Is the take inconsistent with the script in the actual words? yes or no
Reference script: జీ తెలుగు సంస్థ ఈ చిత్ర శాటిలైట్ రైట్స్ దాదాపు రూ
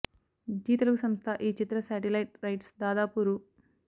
no